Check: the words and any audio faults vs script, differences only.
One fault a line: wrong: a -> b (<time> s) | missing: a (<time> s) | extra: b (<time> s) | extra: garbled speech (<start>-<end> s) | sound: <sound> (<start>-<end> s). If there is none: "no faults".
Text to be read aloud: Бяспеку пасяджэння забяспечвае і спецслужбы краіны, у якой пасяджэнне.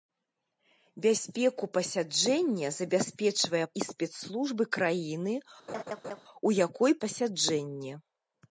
sound: laugh (5.7-6.2 s)